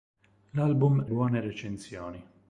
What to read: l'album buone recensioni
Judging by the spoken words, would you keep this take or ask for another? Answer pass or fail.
pass